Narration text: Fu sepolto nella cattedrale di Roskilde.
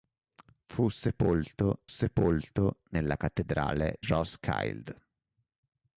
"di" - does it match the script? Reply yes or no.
no